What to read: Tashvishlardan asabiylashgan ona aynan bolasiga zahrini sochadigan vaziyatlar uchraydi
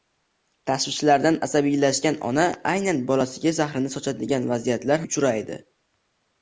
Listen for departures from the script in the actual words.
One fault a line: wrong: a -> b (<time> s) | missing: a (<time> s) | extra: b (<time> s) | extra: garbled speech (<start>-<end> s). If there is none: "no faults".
no faults